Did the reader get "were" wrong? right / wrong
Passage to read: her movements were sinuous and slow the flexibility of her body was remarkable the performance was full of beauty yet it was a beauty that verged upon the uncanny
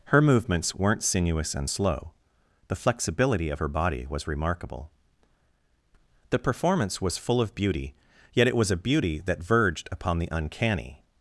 wrong